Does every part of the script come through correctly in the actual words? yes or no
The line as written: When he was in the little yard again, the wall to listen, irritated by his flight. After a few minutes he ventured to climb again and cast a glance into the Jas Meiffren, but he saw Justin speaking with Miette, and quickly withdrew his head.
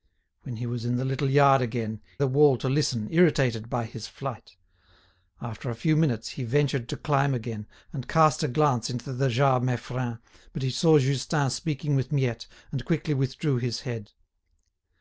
yes